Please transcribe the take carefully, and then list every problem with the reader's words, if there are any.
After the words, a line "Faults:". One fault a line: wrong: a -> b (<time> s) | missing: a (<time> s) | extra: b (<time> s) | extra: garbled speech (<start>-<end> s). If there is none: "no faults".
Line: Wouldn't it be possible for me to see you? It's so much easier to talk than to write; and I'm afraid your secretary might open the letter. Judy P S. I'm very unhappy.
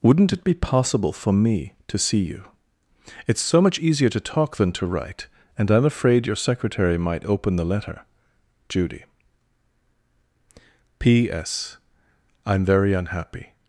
Wouldn't it be possible for me to see you? It's so much easier to talk than to write; and I'm afraid your secretary might open the letter. Judy P S. I'm very unhappy.
Faults:
no faults